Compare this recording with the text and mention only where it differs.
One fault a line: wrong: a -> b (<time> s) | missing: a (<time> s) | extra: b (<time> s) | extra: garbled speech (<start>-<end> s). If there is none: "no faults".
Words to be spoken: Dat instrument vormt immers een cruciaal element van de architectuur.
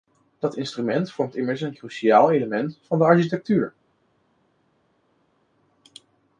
no faults